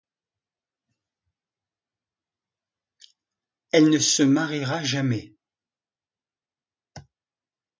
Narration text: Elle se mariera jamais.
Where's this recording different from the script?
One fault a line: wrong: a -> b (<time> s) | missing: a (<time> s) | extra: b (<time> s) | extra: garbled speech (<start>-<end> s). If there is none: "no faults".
extra: ne (3.9 s)